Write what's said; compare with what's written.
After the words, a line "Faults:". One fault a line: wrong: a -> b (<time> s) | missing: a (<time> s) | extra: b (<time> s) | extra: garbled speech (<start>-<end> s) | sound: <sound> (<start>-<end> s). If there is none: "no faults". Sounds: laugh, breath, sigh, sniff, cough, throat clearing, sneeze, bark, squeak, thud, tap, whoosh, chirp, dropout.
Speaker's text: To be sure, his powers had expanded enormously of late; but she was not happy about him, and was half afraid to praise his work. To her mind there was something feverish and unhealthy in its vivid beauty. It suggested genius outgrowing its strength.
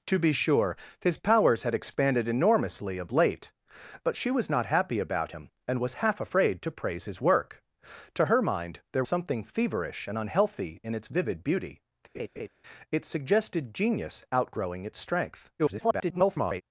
To be sure, his powers had expanded enormously of late; but she was not happy about him, and was half afraid to praise his work. To her mind there something feverish and unhealthy in its vivid beauty. It suggested genius outgrowing its strength. [garbled]
Faults:
missing: was (9.0 s)
sound: laugh (12.1-12.5 s)
extra: garbled speech (15.6-16.6 s)